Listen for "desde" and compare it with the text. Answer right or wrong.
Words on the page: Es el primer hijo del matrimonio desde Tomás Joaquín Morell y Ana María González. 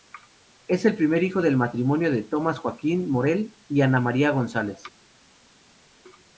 wrong